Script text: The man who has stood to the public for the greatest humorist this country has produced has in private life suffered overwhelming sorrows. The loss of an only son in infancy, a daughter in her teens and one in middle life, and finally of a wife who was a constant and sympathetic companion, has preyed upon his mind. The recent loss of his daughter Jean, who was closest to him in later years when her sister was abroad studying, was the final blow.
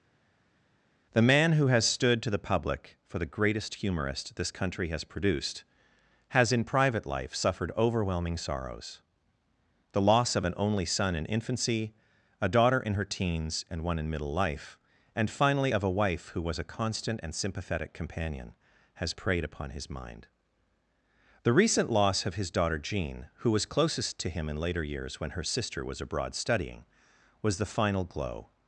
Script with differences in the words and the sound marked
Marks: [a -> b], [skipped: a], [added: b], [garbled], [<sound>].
The man who has stood to the public for the greatest humorist this country has produced has in private life suffered overwhelming sorrows. The loss of an only son in infancy, a daughter in her teens and one in middle life, and finally of a wife who was a constant and sympathetic companion, has preyed upon his mind. The recent loss of his daughter Jean, who was closest to him in later years when her sister was abroad studying, was the final [blow. -> glow]